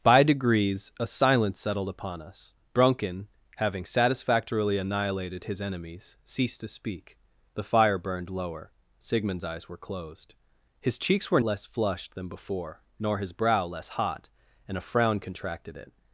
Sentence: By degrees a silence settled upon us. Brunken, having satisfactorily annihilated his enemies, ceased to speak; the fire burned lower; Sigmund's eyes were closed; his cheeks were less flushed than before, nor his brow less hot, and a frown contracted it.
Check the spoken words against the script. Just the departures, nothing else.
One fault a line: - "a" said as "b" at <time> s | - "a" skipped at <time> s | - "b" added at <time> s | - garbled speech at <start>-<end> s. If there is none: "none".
none